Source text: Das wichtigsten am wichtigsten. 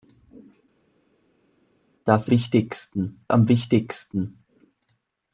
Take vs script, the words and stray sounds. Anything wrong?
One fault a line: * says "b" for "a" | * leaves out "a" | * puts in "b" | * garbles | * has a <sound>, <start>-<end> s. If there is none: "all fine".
all fine